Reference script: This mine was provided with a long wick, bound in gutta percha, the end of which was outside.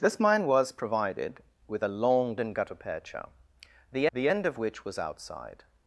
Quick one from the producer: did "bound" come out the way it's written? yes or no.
no